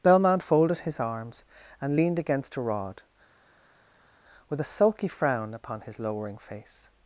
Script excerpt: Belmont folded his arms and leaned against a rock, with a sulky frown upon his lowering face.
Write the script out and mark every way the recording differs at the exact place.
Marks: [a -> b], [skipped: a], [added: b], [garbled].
Belmont folded his arms and leaned against a [rock, -> rod] with a sulky frown upon his lowering face.